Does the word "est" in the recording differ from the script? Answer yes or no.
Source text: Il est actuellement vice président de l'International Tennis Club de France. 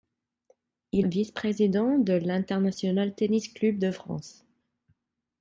yes